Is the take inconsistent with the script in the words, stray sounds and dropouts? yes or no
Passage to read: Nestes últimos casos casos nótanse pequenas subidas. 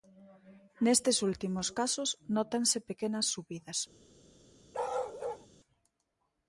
yes